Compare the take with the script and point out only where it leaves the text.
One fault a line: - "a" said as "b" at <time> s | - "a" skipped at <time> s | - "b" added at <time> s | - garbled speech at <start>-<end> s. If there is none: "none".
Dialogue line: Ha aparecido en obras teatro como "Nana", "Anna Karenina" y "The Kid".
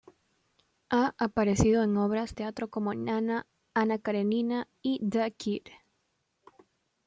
none